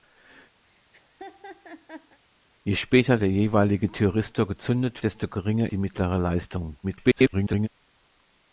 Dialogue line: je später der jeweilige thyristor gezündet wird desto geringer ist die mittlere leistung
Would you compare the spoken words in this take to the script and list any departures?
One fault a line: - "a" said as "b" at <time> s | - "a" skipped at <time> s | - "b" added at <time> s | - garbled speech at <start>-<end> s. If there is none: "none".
- "wird" skipped at 5.0 s
- "ist" skipped at 5.7 s
- garbled speech at 6.8-7.7 s